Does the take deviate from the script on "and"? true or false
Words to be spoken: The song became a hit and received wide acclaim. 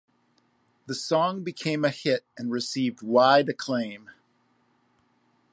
false